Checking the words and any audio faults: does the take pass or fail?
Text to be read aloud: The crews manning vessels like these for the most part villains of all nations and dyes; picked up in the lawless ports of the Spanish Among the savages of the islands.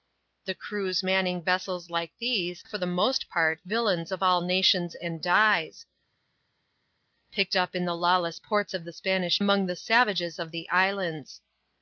pass